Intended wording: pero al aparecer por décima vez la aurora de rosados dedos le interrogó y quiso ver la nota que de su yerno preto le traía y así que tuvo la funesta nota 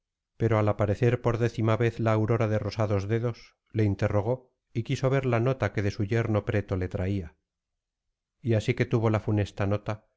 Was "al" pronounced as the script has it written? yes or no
yes